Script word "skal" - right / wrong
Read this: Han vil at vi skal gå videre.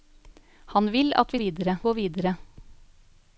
wrong